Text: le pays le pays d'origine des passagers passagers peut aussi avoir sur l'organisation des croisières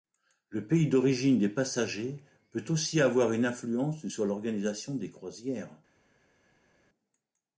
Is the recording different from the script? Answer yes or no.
yes